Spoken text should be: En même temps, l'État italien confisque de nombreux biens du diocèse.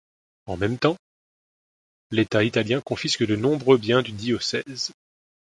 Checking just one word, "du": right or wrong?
right